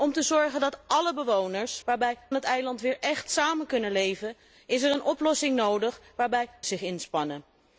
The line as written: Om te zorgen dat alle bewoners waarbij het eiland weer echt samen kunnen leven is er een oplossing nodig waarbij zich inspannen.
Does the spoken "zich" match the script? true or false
true